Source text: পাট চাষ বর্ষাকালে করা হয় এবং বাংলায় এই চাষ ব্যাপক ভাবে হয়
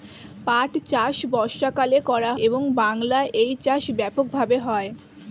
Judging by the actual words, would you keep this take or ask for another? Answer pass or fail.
fail